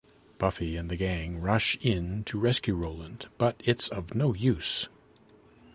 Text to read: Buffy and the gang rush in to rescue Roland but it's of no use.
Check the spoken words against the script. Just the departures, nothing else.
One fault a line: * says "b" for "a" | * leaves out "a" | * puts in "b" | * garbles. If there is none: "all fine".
all fine